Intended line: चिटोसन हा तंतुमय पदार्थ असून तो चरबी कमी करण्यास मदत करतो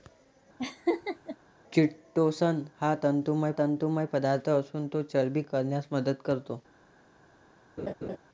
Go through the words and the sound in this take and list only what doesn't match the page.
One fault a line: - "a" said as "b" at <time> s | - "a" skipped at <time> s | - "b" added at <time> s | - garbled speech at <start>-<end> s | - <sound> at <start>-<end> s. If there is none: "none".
- laugh at 0.6-1.4 s
- "तंतुमय" added at 3.5 s
- "कमी" skipped at 5.4 s
- laugh at 7.8-8.2 s